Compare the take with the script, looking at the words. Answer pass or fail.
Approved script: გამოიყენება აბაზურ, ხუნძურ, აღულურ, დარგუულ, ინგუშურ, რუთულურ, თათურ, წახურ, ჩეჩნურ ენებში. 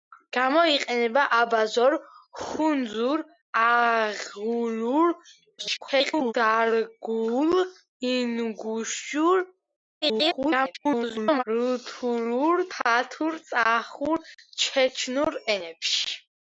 fail